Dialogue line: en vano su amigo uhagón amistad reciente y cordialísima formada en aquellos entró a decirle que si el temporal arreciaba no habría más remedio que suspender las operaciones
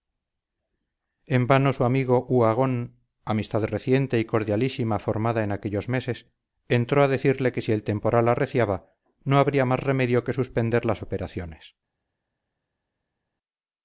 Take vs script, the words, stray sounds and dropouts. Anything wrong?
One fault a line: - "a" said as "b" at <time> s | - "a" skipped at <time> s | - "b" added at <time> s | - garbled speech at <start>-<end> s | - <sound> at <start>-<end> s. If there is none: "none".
- "meses" added at 5.9 s